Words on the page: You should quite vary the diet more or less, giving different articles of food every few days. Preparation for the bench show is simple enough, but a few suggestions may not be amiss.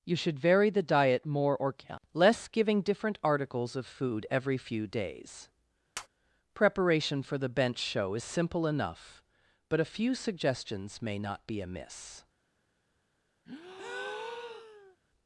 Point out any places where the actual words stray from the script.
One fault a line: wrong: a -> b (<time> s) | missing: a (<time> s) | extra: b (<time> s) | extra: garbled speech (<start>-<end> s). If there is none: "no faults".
missing: quite (0.4 s)